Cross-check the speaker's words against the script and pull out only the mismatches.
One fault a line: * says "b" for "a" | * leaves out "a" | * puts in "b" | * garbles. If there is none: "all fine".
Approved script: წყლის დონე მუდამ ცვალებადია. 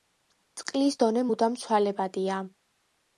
all fine